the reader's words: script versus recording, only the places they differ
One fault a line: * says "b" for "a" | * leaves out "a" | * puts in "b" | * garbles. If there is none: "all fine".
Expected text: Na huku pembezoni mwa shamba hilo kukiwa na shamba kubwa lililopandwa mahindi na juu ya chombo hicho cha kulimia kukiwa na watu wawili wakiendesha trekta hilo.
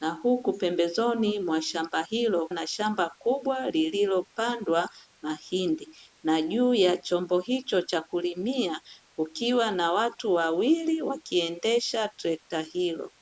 * leaves out "kukiwa"